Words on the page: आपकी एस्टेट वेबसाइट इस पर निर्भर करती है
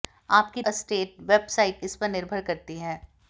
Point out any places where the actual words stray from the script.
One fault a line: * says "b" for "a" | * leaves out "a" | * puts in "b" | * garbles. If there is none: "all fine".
all fine